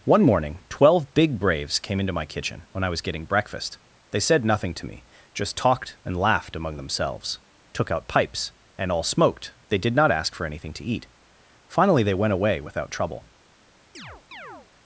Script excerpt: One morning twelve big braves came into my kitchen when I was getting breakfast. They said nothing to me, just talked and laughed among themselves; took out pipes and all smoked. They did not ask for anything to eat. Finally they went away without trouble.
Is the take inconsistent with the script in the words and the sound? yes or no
yes